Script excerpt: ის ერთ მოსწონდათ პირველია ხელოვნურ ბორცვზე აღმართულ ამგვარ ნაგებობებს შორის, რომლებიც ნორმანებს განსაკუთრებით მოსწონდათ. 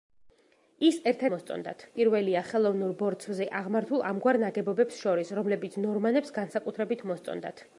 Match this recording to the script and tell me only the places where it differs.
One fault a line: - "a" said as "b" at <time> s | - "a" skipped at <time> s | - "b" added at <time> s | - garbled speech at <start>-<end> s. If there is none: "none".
none